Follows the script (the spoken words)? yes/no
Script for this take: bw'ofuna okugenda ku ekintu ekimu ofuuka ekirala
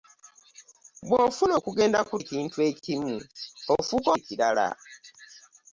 yes